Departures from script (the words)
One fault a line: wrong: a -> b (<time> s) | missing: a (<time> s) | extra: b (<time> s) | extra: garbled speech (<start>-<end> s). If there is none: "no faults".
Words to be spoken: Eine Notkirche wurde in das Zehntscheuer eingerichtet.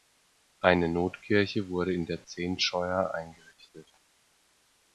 wrong: das -> der (2.0 s)